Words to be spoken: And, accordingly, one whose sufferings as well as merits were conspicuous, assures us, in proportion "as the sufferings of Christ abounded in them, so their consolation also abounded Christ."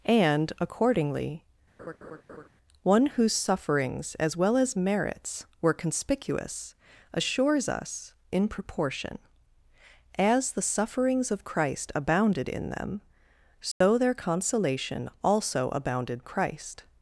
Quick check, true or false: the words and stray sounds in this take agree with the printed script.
false